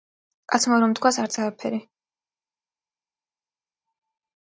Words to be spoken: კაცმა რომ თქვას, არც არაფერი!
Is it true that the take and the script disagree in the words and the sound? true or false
false